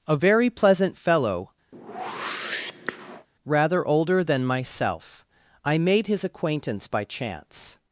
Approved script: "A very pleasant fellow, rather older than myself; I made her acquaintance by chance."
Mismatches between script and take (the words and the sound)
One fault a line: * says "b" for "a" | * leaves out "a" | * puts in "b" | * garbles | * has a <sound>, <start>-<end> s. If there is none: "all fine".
* has a whoosh, 1.7-3.3 s
* says "his" for "her"